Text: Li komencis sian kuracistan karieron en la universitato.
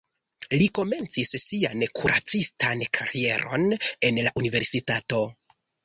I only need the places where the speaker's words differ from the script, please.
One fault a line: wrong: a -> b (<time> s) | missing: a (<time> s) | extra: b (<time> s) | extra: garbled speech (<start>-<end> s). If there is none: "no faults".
no faults